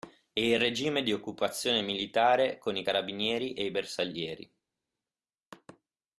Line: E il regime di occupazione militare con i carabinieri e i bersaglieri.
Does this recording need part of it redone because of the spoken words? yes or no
no